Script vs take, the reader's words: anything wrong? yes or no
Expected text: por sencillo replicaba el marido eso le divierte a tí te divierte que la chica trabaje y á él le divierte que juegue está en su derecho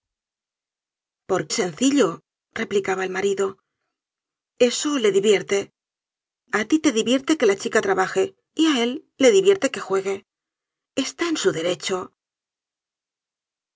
no